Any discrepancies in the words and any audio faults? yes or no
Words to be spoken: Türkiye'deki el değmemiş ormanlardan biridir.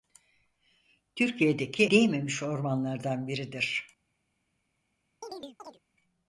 yes